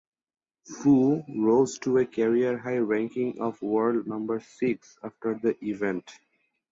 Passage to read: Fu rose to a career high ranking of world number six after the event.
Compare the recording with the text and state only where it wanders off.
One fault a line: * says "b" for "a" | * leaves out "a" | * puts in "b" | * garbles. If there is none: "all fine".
all fine